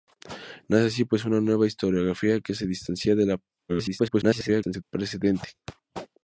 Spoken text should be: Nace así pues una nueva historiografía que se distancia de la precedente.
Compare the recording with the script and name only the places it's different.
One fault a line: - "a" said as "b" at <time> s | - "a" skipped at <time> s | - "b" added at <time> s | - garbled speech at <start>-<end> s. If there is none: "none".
- garbled speech at 3.7-4.8 s